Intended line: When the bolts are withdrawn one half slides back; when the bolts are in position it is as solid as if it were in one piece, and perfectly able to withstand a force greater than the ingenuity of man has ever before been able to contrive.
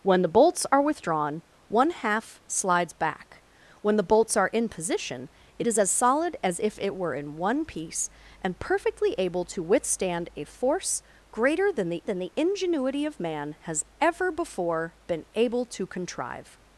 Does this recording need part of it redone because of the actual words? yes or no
yes